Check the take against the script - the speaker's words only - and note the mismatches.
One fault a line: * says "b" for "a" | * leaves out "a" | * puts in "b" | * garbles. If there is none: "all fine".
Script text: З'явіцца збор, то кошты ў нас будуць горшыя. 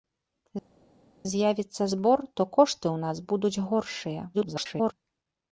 * garbles